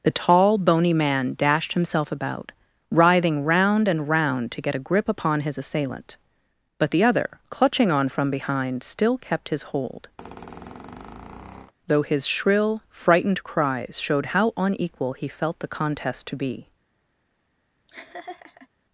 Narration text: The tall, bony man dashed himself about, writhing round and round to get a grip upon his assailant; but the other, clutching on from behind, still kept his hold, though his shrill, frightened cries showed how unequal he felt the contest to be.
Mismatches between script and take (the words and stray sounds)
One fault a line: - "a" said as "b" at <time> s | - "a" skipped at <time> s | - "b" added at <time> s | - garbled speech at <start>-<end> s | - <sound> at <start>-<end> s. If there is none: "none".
- squeak at 10.2-11.7 s
- laugh at 17.9-18.7 s